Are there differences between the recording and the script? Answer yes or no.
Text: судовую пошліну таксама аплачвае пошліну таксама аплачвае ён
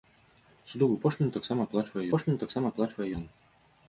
no